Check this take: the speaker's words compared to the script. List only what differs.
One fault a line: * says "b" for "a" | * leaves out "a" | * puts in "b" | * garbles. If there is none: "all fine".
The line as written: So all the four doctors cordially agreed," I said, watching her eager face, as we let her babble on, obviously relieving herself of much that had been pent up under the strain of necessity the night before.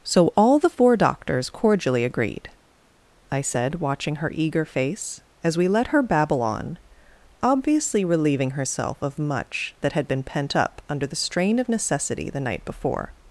all fine